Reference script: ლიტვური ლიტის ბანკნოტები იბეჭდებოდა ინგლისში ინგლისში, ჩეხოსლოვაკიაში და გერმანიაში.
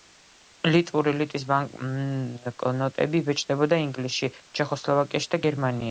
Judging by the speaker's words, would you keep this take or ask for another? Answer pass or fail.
fail